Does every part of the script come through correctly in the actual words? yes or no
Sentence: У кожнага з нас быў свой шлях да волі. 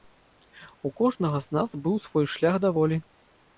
yes